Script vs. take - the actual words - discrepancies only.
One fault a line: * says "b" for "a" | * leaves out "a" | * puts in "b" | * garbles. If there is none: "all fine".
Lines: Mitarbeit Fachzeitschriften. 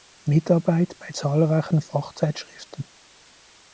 * puts in "bei zahlreichen"